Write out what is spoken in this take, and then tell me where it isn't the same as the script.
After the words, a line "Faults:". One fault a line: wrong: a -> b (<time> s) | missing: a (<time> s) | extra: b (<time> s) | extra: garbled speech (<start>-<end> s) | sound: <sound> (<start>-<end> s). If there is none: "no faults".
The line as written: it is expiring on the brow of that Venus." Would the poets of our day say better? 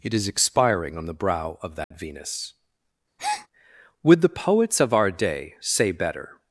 it is expiring on the brow of that Venus." Would the poets of our day say better?
Faults:
sound: dropout (1.8-1.9 s)
sound: breath (3.2-3.5 s)